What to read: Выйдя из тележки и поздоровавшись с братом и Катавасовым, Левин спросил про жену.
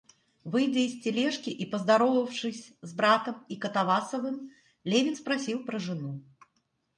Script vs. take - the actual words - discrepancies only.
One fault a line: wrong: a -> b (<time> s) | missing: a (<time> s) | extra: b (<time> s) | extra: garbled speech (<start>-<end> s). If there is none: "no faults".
no faults